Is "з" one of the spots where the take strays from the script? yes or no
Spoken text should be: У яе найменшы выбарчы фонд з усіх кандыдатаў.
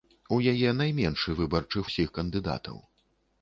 yes